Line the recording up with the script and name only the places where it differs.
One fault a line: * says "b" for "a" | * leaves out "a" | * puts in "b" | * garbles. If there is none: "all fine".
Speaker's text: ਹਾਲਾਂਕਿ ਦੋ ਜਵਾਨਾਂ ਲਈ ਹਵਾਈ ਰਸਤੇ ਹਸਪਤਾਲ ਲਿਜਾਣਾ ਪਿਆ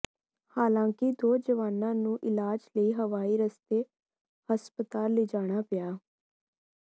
* puts in "ਨੂੰ ਇਲਾਜ"